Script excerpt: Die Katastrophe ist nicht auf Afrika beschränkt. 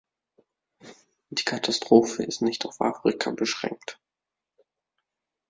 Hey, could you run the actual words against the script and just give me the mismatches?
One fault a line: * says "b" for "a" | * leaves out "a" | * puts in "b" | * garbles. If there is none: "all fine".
all fine